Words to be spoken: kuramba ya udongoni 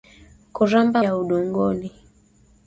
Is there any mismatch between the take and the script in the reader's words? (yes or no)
no